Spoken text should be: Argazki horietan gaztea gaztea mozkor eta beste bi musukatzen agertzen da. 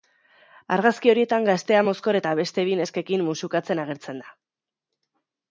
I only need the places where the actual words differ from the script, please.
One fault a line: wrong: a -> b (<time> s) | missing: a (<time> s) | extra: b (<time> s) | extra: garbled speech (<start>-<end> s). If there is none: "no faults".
missing: gaztea (1.8 s)
extra: neskekin (2.8 s)